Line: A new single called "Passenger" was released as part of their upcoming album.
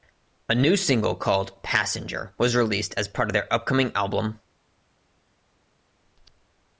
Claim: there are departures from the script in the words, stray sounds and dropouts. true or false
false